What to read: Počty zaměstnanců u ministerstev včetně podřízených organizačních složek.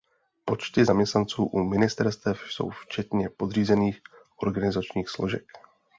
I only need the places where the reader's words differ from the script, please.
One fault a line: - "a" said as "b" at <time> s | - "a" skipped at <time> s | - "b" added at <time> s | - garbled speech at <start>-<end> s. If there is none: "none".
- "jsou" added at 2.5 s